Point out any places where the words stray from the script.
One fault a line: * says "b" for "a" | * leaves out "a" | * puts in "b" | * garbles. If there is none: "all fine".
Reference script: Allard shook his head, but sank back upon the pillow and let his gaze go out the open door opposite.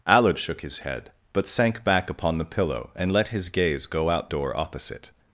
* leaves out "the open"